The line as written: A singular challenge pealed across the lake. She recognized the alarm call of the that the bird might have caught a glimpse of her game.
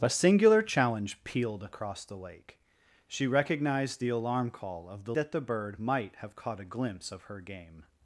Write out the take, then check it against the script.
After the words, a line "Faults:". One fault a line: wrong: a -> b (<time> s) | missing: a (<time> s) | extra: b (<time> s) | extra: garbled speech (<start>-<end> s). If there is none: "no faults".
A singular challenge pealed across the lake. She recognized the alarm call of the that the bird might have caught a glimpse of her game.
Faults:
no faults